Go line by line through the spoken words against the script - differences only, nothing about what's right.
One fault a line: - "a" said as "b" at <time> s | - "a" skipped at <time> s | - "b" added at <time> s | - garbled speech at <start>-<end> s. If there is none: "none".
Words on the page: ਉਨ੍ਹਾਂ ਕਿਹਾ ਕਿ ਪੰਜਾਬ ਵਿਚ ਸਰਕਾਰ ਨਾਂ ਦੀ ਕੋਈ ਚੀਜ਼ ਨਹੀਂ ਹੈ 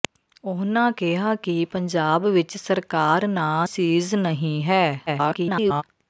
- "ਦੀ ਕੋਈ" skipped at 3.7 s
- garbled speech at 5.1-5.8 s